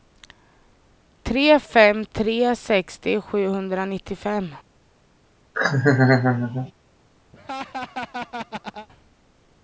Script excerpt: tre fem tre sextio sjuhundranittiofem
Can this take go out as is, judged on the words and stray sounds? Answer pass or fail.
fail